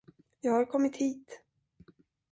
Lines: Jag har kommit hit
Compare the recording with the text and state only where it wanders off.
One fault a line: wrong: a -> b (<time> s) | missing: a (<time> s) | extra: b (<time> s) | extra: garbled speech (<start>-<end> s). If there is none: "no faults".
no faults